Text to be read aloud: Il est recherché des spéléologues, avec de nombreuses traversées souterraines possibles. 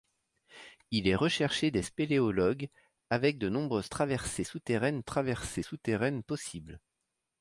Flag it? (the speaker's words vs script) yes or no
yes